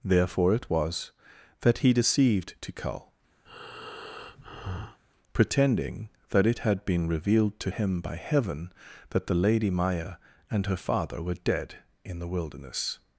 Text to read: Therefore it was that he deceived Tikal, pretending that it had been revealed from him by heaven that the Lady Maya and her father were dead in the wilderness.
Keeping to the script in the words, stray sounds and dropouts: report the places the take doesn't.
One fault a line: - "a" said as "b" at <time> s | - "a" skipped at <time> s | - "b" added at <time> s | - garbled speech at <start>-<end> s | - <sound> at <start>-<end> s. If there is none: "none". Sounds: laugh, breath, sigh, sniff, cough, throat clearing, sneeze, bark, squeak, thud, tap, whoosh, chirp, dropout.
- breath at 3.5-5.0 s
- "from" said as "to" at 7.6 s